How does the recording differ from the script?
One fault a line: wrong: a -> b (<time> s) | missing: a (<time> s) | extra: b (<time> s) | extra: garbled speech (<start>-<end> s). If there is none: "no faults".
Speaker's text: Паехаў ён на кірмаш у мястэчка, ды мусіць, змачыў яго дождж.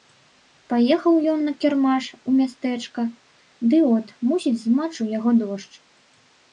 extra: от (4.0 s)